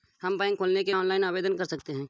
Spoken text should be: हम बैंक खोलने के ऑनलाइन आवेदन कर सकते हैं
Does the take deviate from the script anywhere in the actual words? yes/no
no